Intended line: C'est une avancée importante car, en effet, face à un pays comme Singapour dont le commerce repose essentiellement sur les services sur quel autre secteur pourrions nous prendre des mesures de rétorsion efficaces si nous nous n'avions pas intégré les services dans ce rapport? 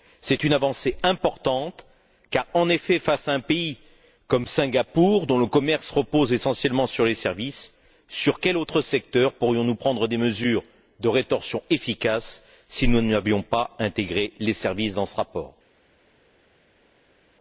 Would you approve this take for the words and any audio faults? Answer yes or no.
no